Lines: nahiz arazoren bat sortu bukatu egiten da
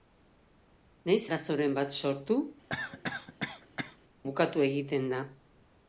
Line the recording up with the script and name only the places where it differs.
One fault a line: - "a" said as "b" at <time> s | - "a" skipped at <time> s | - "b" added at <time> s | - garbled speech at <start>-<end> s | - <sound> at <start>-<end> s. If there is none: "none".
- cough at 2.7-4.0 s